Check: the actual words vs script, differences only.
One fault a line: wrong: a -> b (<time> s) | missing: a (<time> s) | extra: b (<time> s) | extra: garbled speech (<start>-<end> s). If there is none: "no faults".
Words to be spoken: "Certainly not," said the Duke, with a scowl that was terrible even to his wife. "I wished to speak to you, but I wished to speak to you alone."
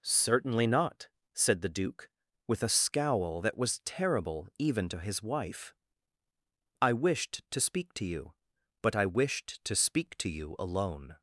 no faults